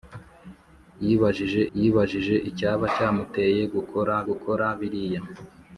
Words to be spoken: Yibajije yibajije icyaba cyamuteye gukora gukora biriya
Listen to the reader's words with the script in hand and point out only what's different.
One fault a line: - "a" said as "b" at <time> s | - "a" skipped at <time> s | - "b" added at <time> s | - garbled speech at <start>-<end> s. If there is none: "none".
none